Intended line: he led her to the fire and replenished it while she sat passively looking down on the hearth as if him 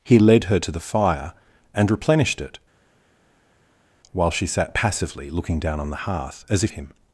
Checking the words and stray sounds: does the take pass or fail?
pass